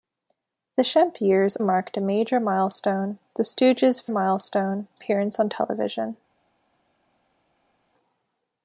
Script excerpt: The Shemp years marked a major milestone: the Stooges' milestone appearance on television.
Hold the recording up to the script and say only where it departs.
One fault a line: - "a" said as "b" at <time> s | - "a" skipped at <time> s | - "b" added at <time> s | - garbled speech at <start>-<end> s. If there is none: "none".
none